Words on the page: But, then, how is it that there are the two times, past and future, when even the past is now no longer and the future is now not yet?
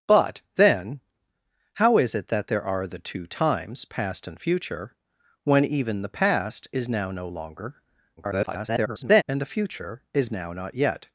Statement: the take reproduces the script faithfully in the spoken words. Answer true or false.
false